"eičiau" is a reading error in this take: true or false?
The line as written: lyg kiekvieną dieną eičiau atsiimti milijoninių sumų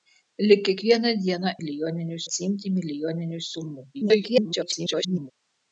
true